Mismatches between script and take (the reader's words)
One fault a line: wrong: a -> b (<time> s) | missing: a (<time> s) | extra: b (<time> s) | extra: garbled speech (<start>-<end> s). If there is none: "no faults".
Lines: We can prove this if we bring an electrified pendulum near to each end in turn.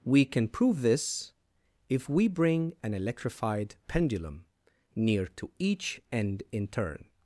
no faults